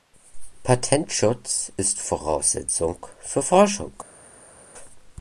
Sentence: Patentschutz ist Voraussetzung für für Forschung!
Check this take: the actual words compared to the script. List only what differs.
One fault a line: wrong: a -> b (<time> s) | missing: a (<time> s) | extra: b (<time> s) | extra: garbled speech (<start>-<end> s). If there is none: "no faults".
missing: für (3.4 s)